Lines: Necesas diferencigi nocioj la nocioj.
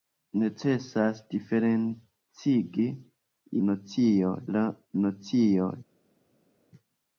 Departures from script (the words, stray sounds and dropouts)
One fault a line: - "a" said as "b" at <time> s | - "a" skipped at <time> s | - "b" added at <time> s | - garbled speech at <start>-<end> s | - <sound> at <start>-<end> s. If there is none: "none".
none